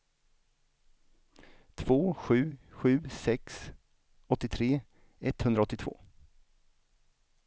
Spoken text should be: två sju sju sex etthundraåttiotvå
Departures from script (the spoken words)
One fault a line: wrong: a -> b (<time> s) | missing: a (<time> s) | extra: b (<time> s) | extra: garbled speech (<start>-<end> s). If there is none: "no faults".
extra: åttiotre (4.3 s)